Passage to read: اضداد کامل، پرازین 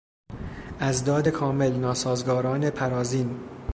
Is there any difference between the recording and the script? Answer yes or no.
yes